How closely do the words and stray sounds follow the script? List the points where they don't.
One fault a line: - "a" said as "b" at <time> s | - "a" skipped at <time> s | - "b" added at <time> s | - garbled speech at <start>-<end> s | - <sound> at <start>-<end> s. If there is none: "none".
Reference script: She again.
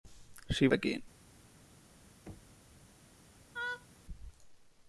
- thud at 2.3-2.6 s
- laugh at 3.5-3.9 s